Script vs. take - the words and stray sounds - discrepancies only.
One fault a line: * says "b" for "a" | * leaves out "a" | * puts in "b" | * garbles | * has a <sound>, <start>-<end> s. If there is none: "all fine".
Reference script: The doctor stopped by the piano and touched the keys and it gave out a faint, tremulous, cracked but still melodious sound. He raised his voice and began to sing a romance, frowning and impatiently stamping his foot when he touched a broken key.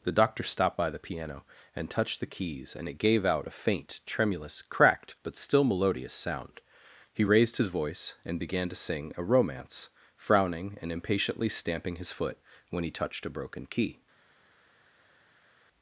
all fine